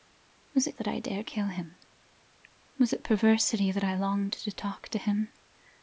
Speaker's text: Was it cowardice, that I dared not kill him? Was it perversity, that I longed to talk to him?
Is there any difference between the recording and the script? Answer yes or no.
yes